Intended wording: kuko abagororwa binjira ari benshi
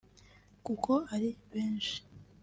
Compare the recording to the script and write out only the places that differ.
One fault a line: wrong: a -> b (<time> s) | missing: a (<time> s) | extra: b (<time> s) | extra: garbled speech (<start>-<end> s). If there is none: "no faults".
missing: abagororwa binjira (0.9 s)